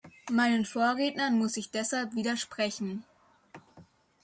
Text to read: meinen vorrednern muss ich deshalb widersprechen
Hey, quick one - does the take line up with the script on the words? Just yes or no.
yes